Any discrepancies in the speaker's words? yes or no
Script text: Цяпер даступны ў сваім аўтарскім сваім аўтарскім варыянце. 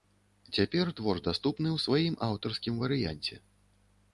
yes